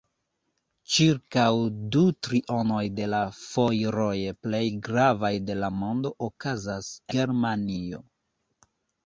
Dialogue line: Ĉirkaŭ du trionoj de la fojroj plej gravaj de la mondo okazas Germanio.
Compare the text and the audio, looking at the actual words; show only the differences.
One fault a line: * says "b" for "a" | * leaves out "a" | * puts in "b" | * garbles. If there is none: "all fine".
all fine